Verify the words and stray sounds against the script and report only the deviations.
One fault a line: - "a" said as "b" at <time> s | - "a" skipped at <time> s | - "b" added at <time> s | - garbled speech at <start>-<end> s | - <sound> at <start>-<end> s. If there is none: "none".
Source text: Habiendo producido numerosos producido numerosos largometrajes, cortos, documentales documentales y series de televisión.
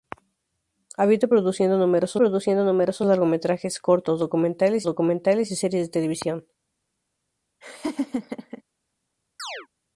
- laugh at 7.6-8.6 s
- chirp at 9.4-9.7 s